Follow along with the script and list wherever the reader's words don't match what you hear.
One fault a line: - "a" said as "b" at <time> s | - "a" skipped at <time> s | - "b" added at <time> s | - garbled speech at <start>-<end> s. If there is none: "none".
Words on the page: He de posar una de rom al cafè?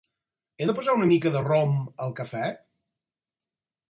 - "mica" added at 1.1 s